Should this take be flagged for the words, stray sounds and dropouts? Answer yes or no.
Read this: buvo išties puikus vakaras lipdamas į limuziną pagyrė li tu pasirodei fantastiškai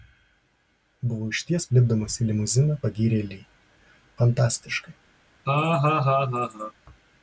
yes